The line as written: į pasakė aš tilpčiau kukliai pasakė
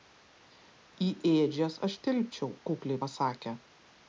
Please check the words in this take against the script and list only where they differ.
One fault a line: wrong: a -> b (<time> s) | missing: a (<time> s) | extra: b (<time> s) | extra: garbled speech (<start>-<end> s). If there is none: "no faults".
wrong: pasakė -> ėdžias (1.3 s)